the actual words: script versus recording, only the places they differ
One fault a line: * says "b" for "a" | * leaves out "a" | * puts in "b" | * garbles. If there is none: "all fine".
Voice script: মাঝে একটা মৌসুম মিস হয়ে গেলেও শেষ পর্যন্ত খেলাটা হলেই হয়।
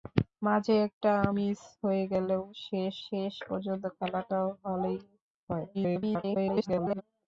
* leaves out "মৌসুম"
* puts in "শেষ"
* garbles